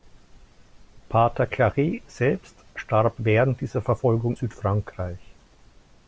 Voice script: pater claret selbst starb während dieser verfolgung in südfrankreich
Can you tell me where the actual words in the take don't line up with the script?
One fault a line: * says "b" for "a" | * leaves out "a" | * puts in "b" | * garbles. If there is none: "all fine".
* leaves out "in"